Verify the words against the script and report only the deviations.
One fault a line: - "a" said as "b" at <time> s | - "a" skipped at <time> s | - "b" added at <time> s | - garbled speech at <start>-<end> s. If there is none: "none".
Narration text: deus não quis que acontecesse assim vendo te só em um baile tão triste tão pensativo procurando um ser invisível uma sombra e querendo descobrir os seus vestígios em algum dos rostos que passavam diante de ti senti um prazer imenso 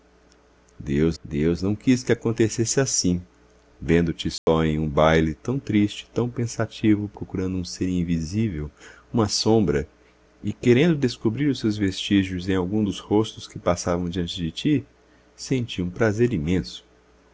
- "deus" added at 1.2 s